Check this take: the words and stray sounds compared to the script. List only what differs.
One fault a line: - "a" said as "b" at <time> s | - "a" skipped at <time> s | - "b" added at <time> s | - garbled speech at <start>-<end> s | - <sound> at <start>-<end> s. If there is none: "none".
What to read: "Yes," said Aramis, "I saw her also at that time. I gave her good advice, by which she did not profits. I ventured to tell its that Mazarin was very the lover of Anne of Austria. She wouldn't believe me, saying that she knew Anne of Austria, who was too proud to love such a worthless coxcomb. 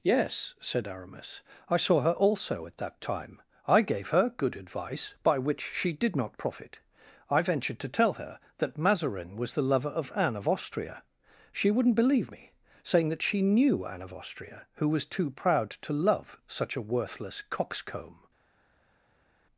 - "profits" said as "profit" at 6.4 s
- "its" said as "her" at 8.1 s
- "very" skipped at 9.5 s